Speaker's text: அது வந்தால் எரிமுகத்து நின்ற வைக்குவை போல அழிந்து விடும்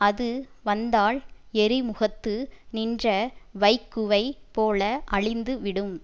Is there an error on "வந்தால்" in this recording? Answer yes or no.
no